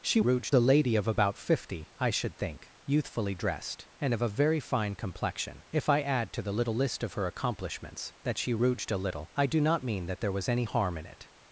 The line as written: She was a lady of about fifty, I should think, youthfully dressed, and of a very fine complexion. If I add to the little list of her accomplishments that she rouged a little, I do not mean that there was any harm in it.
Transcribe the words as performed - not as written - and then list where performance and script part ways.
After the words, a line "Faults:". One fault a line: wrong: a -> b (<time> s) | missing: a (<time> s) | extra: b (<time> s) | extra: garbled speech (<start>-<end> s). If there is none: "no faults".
She rouged a lady of about fifty, I should think, youthfully dressed, and of a very fine complexion. If I add to the little list of her accomplishments that she rouged a little, I do not mean that there was any harm in it.
Faults:
wrong: was -> rouged (0.2 s)